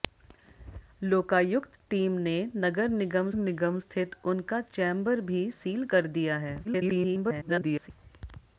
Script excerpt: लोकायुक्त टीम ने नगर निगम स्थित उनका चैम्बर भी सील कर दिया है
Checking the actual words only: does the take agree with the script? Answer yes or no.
no